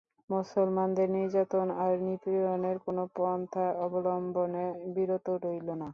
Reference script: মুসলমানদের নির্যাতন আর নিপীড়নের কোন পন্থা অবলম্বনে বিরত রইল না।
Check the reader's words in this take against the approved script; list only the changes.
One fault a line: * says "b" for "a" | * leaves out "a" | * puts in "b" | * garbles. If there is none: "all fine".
all fine